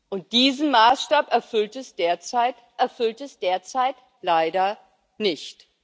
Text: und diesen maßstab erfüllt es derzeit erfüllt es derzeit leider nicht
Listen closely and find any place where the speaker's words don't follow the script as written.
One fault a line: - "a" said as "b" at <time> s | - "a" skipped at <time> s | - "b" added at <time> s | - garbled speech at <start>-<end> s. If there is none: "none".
none